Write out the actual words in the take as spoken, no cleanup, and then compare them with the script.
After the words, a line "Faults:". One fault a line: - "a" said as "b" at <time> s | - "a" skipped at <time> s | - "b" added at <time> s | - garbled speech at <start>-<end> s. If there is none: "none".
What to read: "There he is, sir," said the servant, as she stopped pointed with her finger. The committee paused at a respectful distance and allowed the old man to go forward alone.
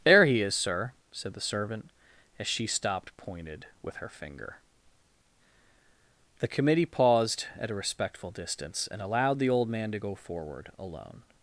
"There he is, sir," said the servant, as she stopped pointed with her finger. The committee paused at a respectful distance and allowed the old man to go forward alone.
Faults:
none